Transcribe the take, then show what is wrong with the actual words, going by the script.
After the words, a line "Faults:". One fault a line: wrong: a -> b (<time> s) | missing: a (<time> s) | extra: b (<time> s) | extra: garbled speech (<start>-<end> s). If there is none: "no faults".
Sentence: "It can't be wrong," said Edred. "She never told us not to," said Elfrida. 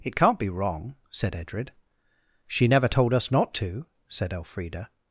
"It can't be wrong," said Edred. "She never told us not to," said Elfrida.
Faults:
no faults